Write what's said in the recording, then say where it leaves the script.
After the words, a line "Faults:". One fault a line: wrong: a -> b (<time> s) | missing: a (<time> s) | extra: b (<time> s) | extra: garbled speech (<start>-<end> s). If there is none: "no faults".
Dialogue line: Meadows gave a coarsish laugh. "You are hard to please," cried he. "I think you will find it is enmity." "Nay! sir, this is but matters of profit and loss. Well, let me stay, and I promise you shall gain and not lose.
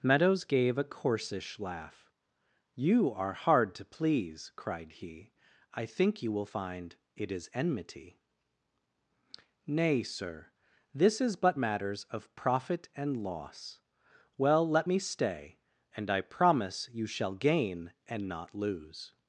Meadows gave a coarsish laugh. "You are hard to please," cried he. "I think you will find it is enmity." "Nay! sir, this is but matters of profit and loss. Well, let me stay, and I promise you shall gain and not lose.
Faults:
no faults